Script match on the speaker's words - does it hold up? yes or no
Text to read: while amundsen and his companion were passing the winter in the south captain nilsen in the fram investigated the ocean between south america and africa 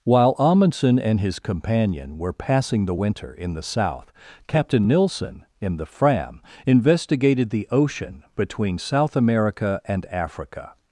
yes